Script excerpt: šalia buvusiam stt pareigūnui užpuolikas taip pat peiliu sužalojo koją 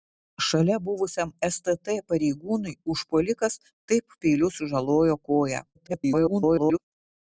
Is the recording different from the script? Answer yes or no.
yes